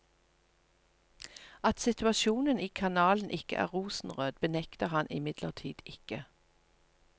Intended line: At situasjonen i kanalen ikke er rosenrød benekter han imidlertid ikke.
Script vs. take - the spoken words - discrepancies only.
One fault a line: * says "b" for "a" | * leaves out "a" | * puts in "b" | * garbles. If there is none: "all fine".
all fine